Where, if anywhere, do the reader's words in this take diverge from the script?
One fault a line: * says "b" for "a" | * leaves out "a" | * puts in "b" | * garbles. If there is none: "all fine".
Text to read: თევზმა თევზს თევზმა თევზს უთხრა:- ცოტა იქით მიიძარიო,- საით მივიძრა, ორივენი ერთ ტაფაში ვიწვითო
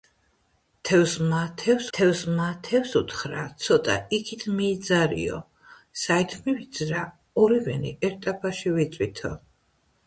all fine